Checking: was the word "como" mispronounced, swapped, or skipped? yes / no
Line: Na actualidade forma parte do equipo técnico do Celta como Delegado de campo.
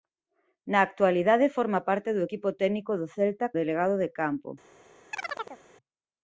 yes